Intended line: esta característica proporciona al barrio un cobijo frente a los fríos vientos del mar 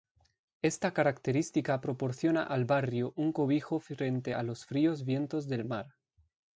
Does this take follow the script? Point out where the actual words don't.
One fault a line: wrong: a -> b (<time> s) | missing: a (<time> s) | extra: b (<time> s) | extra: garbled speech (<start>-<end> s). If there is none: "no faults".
no faults